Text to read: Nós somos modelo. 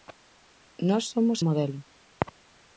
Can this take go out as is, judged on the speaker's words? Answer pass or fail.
pass